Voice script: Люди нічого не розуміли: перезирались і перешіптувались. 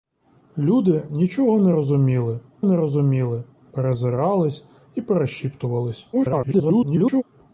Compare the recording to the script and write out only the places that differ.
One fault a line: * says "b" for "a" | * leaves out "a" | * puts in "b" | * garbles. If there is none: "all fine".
* puts in "не розуміли"
* garbles